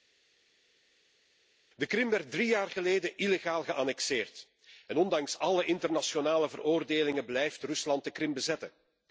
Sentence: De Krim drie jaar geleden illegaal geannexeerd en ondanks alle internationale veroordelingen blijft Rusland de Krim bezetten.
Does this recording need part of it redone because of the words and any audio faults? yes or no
yes